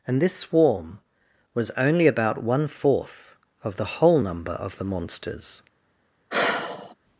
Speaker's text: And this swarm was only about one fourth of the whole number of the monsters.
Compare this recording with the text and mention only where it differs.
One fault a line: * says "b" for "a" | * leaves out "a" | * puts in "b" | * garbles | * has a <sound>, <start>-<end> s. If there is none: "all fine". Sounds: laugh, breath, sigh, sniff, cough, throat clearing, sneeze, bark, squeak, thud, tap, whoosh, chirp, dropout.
* has a sigh, 6.3-6.9 s